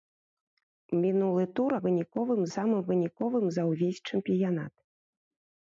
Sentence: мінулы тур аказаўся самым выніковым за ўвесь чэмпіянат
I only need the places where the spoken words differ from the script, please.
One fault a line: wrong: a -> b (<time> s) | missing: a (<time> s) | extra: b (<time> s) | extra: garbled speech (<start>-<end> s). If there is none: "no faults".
wrong: аказаўся -> выніковым (1.9 s)